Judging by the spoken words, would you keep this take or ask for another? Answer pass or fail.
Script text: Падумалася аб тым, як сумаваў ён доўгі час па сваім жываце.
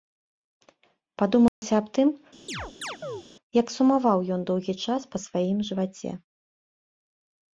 pass